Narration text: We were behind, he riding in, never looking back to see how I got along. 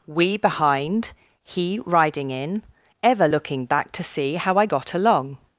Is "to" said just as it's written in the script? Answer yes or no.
yes